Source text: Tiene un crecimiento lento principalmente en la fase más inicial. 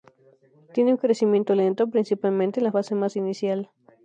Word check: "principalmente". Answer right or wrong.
right